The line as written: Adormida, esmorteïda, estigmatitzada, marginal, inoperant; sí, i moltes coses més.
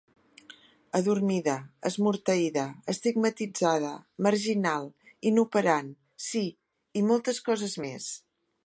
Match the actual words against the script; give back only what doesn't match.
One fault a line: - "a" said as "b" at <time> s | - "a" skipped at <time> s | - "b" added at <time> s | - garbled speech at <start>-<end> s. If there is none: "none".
none